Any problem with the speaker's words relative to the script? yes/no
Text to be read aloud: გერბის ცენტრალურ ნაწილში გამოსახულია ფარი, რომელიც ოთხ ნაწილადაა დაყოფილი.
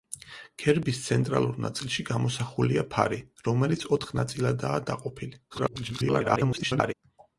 yes